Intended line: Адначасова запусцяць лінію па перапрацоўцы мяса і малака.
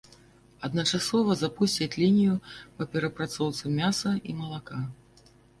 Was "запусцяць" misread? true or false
false